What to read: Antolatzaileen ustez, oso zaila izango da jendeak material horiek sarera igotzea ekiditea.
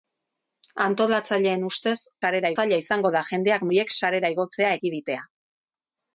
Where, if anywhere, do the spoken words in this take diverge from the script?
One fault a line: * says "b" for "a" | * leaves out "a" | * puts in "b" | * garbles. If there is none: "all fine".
* says "sarera" for "oso"
* leaves out "material"